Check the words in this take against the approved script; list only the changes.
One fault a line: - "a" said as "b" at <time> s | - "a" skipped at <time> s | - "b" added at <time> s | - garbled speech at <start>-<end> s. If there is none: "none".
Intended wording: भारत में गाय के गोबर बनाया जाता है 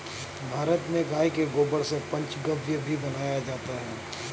- "से पंचगव्य भी" added at 1.8 s